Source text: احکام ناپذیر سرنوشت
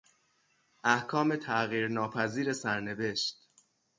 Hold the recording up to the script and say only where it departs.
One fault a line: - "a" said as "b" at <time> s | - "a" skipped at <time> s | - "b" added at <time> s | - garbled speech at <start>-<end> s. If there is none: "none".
- "تغییر" added at 1.4 s